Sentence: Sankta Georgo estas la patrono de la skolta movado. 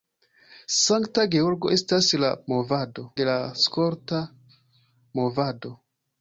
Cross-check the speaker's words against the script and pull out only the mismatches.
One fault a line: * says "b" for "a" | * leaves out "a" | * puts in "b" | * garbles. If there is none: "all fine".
* says "movado" for "patrono"